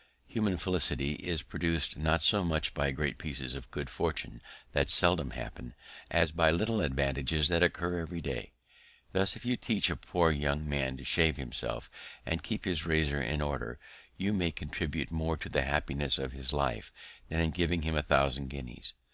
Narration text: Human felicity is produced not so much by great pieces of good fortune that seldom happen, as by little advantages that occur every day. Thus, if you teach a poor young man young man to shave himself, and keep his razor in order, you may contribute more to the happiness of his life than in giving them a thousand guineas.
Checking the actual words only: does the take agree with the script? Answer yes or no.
no